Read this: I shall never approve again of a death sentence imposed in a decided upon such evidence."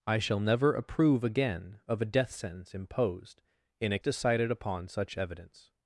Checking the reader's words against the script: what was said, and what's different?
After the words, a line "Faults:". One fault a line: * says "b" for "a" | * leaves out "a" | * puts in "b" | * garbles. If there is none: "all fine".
I shall never approve again of a death sentence imposed in a decided upon such evidence."
Faults:
all fine